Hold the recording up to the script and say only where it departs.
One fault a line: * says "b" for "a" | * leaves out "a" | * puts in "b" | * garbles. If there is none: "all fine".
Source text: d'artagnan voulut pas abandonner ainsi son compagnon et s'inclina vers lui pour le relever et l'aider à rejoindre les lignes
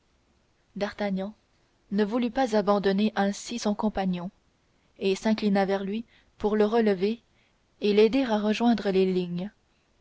* puts in "ne"